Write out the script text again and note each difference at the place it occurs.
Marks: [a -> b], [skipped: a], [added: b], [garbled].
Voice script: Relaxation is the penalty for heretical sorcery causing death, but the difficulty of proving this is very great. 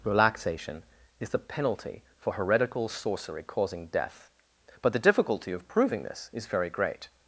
Relaxation is the penalty for heretical sorcery causing death, but the difficulty of proving this is very great.